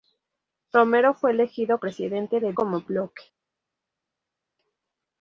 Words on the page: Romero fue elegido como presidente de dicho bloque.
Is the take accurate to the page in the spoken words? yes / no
no